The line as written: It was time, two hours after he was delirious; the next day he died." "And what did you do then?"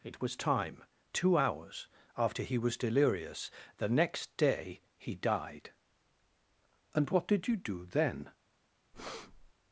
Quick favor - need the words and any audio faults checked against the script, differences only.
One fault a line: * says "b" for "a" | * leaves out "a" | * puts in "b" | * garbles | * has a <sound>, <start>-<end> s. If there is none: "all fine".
* has a breath, 8.9-9.5 s